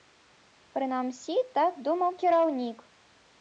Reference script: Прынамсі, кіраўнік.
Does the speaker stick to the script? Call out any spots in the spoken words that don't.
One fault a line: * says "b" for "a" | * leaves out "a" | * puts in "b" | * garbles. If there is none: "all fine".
* puts in "так думаў"